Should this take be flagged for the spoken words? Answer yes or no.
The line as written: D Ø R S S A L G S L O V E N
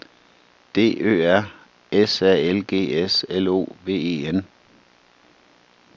yes